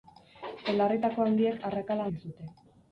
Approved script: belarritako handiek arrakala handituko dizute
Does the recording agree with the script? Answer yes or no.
no